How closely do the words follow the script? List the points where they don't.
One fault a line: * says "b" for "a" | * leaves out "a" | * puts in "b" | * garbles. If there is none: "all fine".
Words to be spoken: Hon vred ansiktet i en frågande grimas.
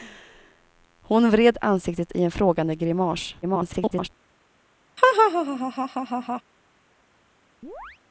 * garbles